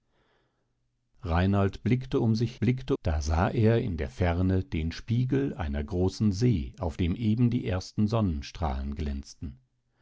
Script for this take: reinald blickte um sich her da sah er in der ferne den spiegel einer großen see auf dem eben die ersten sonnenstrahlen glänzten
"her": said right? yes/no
no